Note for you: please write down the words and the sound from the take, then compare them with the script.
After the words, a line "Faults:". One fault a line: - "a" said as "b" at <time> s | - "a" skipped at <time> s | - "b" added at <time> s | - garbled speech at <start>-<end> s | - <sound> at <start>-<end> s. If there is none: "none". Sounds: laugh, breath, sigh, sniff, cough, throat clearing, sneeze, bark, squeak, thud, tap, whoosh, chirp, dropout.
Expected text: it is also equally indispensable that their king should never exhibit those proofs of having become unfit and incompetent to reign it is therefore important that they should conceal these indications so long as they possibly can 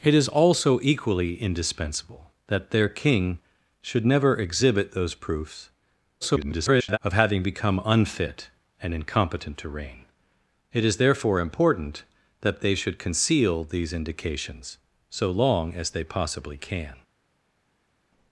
it is also equally indispensable that their king should never exhibit those proofs [garbled] of having become unfit and incompetent to reign it is therefore important that they should conceal these indications so long as they possibly can
Faults:
- garbled speech at 6.2-7.0 s